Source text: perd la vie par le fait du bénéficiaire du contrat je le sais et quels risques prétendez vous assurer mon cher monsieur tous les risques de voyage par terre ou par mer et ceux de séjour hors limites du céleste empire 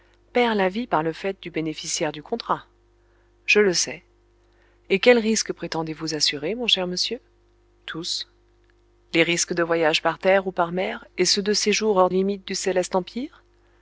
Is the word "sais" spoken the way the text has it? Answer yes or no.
yes